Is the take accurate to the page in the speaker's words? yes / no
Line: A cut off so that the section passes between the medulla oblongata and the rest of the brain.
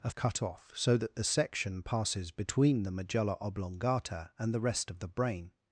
yes